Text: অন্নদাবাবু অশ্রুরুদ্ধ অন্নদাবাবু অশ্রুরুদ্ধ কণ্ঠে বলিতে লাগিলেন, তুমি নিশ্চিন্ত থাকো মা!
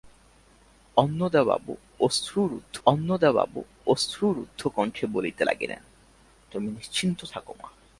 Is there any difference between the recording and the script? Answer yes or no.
no